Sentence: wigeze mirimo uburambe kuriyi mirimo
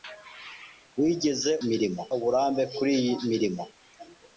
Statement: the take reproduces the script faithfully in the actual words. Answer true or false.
true